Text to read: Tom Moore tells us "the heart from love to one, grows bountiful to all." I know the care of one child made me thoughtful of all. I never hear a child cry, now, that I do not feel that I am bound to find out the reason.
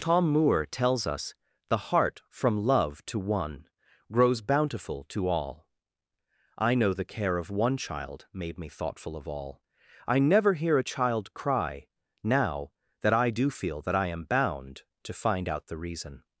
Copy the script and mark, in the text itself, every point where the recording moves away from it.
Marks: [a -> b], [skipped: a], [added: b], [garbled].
Tom Moore tells us "the heart from love to one, grows bountiful to all." I know the care of one child made me thoughtful of all. I never hear a child cry, now, that I do [skipped: not] feel that I am bound to find out the reason.